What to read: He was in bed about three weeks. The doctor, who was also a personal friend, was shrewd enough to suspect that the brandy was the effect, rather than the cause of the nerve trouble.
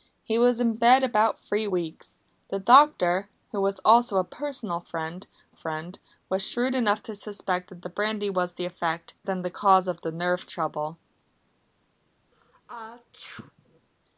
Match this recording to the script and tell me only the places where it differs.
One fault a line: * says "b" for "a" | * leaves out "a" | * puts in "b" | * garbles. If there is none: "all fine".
* puts in "friend"
* leaves out "rather"